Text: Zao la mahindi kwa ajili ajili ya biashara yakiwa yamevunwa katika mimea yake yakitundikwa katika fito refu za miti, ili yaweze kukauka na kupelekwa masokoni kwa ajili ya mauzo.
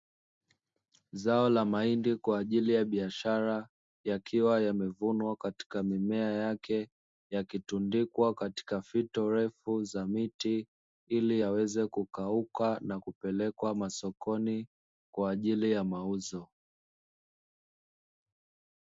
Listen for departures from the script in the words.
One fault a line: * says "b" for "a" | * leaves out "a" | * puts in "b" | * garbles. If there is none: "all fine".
* leaves out "ajili"